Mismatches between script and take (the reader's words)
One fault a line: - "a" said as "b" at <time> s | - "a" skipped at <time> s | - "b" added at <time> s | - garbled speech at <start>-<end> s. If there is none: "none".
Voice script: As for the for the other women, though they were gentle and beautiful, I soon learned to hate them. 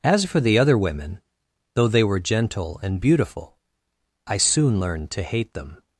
- "for the" skipped at 0.6 s